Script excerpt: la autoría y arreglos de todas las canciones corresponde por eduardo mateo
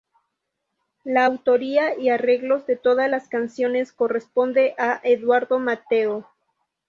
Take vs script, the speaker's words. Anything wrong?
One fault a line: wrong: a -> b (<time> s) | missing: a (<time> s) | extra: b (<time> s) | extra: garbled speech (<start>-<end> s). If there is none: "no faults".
wrong: por -> a (4.8 s)